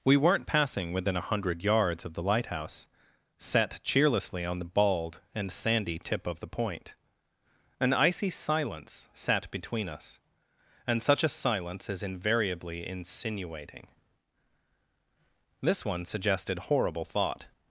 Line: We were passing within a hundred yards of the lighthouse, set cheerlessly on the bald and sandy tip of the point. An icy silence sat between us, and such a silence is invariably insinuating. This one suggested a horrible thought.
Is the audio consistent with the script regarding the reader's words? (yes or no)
no